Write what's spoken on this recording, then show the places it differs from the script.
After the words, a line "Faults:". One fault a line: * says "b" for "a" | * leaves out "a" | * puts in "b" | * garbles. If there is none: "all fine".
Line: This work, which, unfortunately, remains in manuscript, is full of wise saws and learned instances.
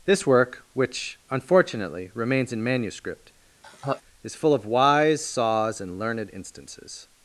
This work, which, unfortunately, remains in manuscript, is full of wise saws and learned instances.
Faults:
all fine